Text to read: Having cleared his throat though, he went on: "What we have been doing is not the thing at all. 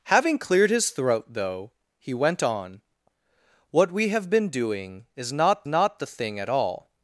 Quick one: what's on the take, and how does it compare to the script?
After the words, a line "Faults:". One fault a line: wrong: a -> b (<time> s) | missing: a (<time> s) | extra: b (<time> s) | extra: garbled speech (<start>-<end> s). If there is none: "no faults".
Having cleared his throat though, he went on: "What we have been doing is not not the thing at all.
Faults:
extra: not (5.7 s)